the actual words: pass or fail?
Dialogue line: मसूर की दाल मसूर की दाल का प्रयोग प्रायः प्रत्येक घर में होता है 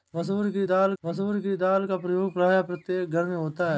pass